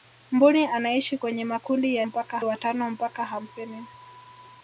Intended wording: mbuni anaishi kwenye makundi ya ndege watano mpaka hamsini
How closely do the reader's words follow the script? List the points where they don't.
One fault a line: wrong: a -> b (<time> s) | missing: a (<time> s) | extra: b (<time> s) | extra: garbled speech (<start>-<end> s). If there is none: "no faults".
wrong: ndege -> mpaka (2.0 s)